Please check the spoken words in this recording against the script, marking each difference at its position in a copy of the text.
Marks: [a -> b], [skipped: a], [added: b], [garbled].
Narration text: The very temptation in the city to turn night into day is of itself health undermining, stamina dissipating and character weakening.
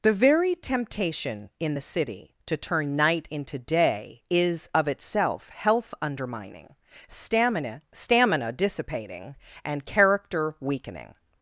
The very temptation in the city to turn night into day is of itself health undermining, stamina [added: stamina] dissipating and character weakening.